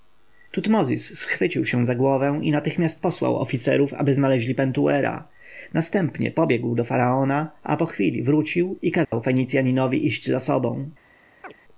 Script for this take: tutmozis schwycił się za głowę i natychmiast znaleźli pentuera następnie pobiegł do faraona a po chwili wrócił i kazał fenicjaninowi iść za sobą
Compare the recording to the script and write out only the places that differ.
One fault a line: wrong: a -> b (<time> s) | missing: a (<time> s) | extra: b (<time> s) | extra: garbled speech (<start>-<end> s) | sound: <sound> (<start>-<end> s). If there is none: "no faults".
extra: posłał oficerów aby (3.0 s)
sound: dropout (9.0-9.1 s)
sound: chirp (11.4-11.5 s)